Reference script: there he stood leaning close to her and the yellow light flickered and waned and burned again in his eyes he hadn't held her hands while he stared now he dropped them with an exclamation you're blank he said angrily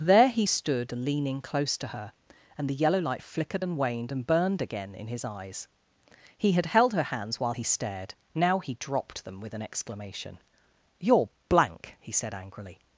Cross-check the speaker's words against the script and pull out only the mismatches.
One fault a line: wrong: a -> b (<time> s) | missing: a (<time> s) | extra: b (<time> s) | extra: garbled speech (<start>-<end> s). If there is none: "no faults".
wrong: hadn't -> had (6.5 s)